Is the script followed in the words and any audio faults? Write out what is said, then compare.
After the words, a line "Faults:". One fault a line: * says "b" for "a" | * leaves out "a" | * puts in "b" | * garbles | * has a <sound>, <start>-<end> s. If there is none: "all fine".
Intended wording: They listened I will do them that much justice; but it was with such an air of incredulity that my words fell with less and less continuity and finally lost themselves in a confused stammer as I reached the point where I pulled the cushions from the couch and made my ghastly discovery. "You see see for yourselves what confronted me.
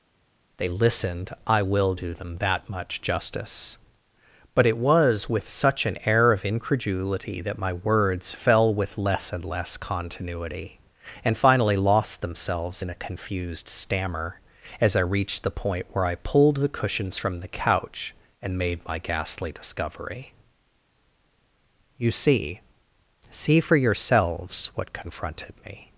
They listened I will do them that much justice; but it was with such an air of incredulity that my words fell with less and less continuity and finally lost themselves in a confused stammer as I reached the point where I pulled the cushions from the couch and made my ghastly discovery. "You see see for yourselves what confronted me.
Faults:
all fine